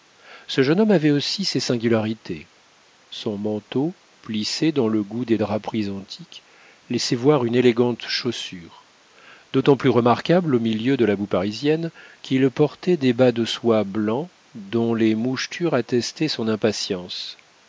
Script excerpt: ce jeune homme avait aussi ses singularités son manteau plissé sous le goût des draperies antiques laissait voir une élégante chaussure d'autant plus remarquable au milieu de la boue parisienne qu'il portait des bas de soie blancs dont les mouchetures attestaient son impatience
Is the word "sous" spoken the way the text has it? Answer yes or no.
no